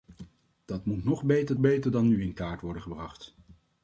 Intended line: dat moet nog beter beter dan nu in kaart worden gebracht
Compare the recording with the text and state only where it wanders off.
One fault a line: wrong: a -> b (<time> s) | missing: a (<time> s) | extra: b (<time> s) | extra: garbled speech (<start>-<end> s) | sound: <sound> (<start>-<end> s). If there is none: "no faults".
no faults